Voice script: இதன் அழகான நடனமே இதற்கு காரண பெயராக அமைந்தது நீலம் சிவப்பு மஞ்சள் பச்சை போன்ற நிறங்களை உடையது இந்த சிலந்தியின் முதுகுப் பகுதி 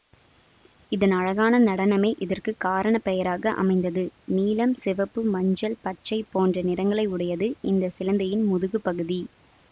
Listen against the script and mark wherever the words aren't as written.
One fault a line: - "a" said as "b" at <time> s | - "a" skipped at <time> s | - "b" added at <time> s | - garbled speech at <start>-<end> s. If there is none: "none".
none